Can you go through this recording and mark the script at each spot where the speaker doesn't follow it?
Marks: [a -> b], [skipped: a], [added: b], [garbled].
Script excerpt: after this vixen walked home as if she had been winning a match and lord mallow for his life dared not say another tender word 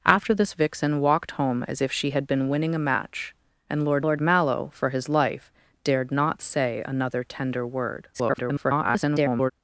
after this vixen walked home as if she had been winning a match and lord [added: lord] mallow for his life dared not say another tender word [garbled]